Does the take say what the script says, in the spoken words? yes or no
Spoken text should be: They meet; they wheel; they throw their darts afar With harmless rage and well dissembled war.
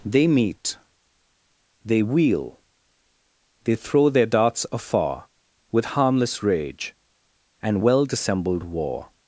yes